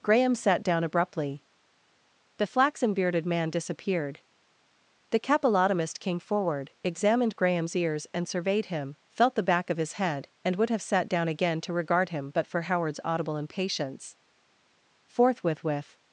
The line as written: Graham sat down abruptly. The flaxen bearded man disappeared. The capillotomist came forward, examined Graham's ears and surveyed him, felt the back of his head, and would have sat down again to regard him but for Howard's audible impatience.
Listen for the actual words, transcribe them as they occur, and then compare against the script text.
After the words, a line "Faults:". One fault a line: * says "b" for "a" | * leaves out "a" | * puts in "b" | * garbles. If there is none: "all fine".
Graham sat down abruptly. The flaxen bearded man disappeared. The capillotomist came forward, examined Graham's ears and surveyed him, felt the back of his head, and would have sat down again to regard him but for Howard's audible impatience. Forthwith with
Faults:
* puts in "Forthwith with"